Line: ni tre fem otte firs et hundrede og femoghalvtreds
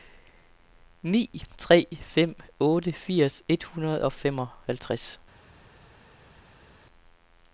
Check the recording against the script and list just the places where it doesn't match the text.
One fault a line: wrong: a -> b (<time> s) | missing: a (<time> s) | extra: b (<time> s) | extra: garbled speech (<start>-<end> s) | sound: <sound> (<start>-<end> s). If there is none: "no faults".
no faults